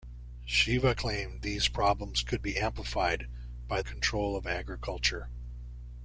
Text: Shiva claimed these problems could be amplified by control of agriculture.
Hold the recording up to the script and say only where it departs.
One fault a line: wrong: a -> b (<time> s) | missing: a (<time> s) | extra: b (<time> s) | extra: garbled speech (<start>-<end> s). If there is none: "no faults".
no faults